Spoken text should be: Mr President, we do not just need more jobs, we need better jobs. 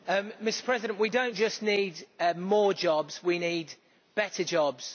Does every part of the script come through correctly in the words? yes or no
yes